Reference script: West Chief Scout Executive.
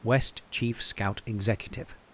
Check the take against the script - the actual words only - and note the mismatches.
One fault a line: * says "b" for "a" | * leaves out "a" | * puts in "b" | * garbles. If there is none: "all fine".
all fine